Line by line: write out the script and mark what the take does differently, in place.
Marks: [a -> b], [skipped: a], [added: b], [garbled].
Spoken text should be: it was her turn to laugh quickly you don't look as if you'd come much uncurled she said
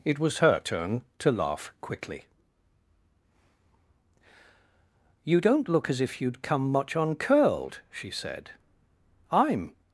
it was her turn to laugh quickly you don't look as if you'd come much uncurled she said [added: i'm]